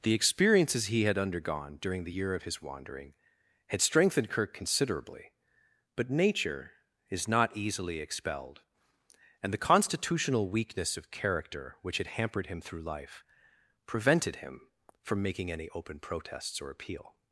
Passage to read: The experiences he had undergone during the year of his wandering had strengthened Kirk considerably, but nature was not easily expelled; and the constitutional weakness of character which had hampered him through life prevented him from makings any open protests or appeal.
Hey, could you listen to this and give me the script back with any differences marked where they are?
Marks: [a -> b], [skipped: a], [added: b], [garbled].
The experiences he had undergone during the year of his wandering had strengthened Kirk considerably, but nature [was -> is] not easily expelled; and the constitutional weakness of character which had hampered him through life prevented him from [makings -> making] any open protests or appeal.